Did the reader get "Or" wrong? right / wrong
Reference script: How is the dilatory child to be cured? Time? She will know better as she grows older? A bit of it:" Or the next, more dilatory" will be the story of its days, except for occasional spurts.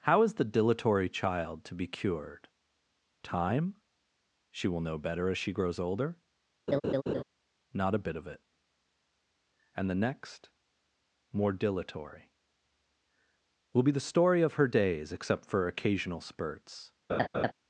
wrong